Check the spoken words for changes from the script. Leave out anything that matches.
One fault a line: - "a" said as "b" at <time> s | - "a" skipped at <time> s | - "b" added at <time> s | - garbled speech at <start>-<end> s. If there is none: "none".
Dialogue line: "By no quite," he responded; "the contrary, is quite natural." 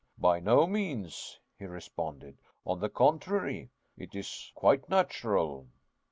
- "quite" said as "means" at 0.7 s
- "on" added at 2.6 s
- "it" added at 4.0 s